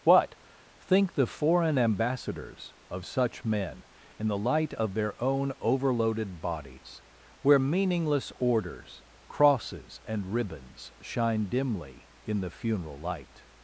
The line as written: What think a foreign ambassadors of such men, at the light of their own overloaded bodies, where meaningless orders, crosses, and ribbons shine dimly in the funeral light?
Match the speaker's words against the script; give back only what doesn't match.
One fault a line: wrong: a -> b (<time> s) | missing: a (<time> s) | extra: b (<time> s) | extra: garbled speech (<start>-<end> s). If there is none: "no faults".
wrong: a -> the (1.1 s)
wrong: at -> in (4.2 s)